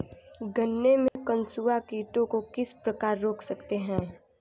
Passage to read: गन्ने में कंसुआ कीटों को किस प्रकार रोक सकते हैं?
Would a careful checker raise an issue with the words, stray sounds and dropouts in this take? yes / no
yes